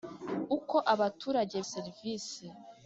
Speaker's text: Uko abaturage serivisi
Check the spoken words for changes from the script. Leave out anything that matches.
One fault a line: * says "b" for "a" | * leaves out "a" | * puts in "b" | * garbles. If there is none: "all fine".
all fine